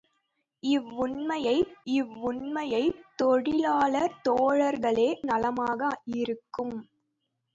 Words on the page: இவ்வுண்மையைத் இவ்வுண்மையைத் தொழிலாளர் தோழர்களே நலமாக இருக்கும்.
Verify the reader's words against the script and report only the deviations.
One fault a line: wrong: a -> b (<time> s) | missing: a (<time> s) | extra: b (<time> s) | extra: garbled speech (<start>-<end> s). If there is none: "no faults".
no faults